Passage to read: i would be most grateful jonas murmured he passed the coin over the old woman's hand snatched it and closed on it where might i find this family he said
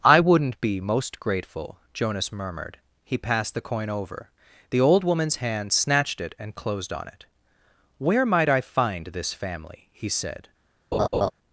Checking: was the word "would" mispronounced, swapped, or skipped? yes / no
yes